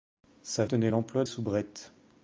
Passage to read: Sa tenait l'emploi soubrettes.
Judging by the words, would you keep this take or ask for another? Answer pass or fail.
pass